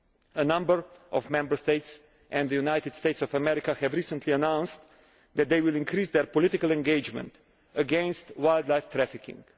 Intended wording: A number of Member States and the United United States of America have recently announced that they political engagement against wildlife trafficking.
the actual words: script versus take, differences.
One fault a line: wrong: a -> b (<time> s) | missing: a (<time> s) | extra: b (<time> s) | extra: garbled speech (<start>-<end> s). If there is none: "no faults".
missing: United (2.9 s)
extra: will increase their (5.6 s)